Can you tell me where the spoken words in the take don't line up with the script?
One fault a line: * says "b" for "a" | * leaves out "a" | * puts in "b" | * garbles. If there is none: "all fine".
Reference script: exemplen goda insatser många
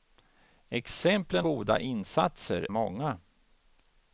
all fine